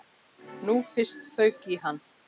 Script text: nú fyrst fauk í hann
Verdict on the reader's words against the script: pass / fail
pass